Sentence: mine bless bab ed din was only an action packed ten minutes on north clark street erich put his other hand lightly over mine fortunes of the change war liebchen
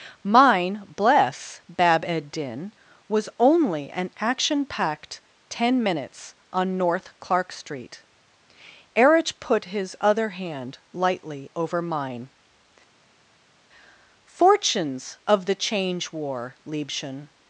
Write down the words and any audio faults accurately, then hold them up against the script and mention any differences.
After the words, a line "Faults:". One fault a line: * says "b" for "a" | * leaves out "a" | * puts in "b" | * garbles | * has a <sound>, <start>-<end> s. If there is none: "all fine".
mine bless bab ed din was only an action packed ten minutes on north clark street erich put his other hand lightly over mine fortunes of the change war liebchen
Faults:
all fine